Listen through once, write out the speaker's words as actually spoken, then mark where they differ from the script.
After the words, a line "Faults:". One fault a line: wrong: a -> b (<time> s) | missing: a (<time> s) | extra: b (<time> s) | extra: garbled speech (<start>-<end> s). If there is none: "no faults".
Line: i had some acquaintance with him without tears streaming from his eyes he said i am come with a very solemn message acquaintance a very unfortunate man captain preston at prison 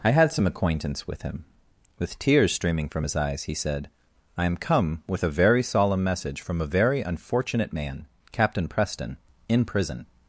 i had some acquaintance with him with tears streaming from his eyes he said i am come with a very solemn message from a very unfortunate man captain preston in prison
Faults:
wrong: without -> with (2.0 s)
wrong: acquaintance -> from (6.4 s)
wrong: at -> in (9.5 s)